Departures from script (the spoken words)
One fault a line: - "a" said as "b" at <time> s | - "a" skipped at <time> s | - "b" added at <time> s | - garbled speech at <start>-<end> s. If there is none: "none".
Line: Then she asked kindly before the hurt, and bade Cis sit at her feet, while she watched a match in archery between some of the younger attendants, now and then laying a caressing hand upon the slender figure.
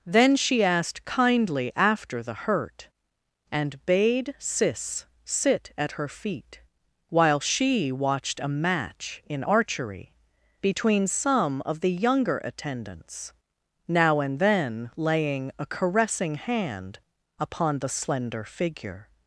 - "before" said as "after" at 1.8 s